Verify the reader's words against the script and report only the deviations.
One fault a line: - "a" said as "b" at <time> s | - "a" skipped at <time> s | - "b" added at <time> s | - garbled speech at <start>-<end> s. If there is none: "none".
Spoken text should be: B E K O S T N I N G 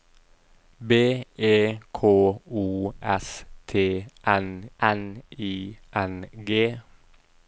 - "N" added at 4.8 s